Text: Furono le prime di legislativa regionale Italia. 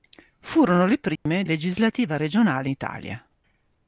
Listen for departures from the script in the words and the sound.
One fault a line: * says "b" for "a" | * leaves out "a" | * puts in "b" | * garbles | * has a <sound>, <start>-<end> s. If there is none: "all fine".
* has a dropout, 1.2-1.3 s